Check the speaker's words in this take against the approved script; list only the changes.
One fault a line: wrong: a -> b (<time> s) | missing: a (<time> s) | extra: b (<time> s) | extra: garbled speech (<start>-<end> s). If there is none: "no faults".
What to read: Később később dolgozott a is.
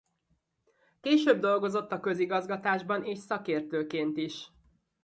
missing: később (1.4 s)
extra: közigazgatásban és szakértőként (2.0 s)